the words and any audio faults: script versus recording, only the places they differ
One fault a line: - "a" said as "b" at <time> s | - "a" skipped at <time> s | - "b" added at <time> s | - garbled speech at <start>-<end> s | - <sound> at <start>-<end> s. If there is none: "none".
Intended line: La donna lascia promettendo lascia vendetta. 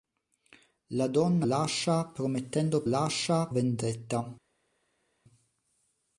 none